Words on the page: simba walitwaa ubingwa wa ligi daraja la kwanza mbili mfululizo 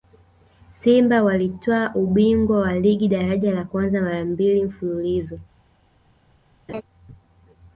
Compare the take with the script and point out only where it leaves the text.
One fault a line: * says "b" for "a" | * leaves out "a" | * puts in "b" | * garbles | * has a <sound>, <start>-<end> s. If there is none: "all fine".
* puts in "mara"
* has a laugh, 6.7-6.8 s